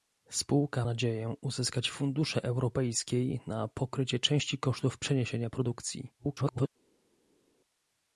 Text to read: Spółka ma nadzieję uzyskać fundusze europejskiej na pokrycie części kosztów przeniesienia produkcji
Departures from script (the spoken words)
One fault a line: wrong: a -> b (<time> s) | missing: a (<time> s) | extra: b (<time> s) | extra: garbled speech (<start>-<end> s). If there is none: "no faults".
missing: ma (0.9 s)
extra: garbled speech (6.2-6.7 s)